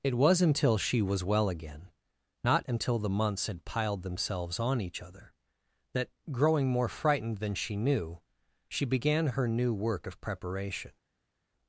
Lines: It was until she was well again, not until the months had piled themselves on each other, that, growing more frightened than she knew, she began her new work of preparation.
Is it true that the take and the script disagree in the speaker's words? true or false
false